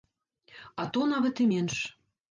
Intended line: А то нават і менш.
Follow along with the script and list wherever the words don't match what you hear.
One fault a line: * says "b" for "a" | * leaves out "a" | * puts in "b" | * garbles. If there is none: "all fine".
all fine